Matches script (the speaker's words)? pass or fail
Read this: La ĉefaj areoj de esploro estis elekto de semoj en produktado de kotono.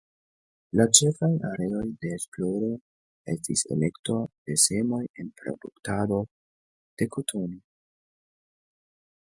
pass